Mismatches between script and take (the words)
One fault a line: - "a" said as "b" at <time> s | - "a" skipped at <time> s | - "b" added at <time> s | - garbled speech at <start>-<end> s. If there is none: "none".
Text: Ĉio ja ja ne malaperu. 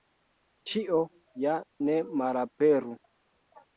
- "ja" skipped at 1.5 s